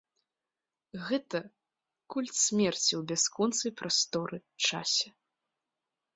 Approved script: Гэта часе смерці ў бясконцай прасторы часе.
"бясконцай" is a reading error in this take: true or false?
false